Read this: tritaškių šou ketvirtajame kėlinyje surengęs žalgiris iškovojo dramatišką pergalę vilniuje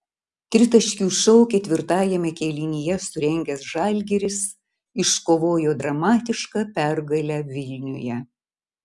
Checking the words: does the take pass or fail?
pass